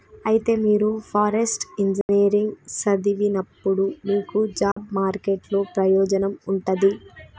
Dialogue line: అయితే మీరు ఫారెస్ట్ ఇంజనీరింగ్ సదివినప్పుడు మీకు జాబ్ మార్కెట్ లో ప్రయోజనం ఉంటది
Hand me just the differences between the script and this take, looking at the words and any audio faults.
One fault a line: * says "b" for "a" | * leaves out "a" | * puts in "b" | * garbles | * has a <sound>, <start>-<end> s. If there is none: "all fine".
* has a dropout, 2.0-2.1 s
* has a dropout, 4.7-4.8 s